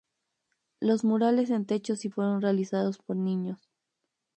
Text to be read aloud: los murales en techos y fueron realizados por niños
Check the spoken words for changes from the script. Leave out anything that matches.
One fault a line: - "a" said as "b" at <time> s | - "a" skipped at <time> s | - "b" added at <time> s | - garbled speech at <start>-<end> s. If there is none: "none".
none